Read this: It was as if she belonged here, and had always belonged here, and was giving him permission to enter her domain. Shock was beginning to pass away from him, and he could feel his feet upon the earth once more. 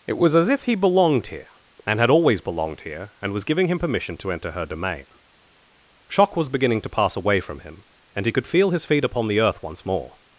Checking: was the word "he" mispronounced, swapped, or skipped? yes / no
no